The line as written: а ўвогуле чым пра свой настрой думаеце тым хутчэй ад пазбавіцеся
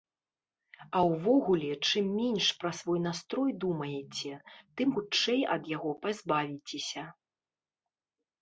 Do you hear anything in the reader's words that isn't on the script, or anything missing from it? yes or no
yes